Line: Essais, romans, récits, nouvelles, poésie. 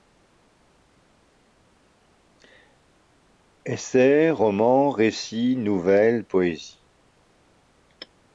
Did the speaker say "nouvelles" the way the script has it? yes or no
yes